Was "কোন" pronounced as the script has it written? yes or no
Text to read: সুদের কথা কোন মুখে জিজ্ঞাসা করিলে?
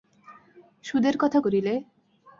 no